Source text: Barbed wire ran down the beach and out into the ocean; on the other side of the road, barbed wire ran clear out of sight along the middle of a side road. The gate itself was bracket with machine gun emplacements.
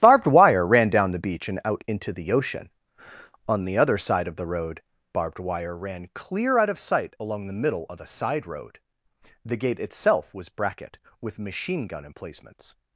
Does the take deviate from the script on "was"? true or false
false